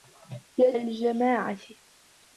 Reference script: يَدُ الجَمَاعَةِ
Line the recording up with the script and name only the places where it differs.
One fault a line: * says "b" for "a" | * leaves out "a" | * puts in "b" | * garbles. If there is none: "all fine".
all fine